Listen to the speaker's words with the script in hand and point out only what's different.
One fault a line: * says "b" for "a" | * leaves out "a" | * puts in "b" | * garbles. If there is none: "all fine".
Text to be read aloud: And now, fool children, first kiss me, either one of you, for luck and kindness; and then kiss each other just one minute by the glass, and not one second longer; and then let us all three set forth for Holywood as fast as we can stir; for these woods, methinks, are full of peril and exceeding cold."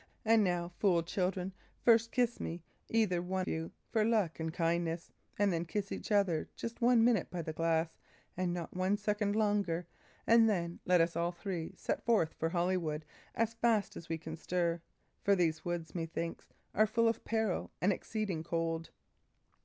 * leaves out "of"